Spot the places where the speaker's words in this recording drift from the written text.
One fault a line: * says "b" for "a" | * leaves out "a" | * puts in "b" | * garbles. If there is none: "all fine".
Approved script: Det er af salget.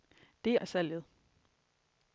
all fine